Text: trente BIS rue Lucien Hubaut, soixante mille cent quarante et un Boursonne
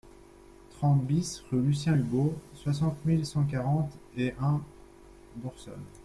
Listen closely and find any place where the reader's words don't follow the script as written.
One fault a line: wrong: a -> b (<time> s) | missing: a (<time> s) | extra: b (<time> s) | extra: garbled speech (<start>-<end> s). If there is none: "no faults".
no faults